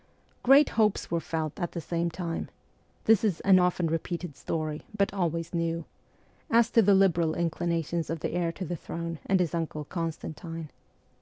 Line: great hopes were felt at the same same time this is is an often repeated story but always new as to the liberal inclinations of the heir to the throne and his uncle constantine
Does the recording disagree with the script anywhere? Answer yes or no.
yes